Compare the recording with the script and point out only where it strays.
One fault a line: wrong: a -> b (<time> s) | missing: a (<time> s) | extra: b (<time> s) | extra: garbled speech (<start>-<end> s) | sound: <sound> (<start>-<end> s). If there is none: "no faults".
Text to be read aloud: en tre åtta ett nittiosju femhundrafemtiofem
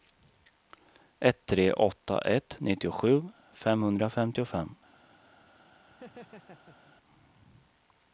wrong: en -> ett (1.2 s)
sound: laugh (5.9-7.0 s)